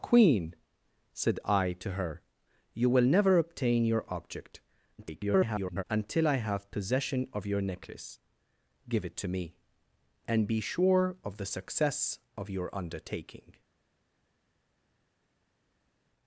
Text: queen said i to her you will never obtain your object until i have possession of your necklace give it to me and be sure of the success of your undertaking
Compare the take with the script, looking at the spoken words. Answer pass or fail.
fail